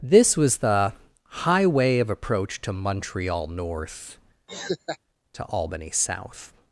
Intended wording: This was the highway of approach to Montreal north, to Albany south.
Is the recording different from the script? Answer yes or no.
no